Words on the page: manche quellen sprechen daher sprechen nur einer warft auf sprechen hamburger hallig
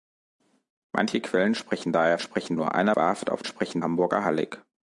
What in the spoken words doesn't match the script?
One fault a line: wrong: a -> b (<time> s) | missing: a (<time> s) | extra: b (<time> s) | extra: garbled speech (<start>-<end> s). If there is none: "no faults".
no faults